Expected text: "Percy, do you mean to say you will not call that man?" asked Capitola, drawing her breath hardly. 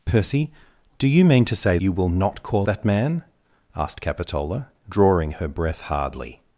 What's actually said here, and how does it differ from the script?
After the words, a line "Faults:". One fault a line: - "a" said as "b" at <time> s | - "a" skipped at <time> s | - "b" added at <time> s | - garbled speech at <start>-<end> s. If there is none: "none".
"Percy, do you mean to say you will not call that man?" asked Capitola, drawing her breath hardly.
Faults:
none